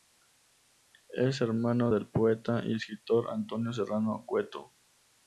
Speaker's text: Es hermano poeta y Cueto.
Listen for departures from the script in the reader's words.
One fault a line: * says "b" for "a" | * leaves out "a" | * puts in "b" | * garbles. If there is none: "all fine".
* puts in "del"
* puts in "escritor Antonio Serrano"